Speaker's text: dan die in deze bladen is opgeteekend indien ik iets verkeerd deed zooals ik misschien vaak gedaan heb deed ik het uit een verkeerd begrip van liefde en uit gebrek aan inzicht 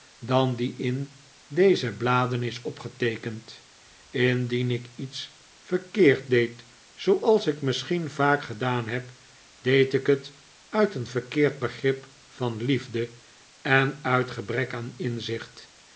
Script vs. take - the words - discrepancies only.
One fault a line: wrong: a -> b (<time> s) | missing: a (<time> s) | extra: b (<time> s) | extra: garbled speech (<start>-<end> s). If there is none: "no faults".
no faults